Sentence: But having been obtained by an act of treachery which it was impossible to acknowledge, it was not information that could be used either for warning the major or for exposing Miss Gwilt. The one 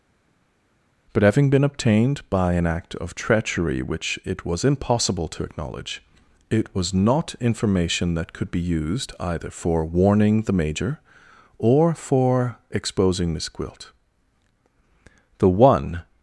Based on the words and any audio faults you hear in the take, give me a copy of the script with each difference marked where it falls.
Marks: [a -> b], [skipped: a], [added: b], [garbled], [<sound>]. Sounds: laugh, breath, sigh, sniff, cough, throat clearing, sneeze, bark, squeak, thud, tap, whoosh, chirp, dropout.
But having been obtained by an act of treachery which it was impossible to acknowledge, it was not information that could be used either for warning the major or for exposing Miss Gwilt. The one